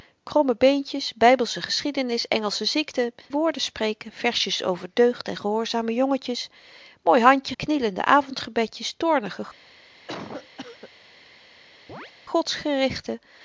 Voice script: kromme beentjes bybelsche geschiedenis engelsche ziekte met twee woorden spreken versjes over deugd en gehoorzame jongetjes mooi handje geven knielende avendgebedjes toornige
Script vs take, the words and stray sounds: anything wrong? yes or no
yes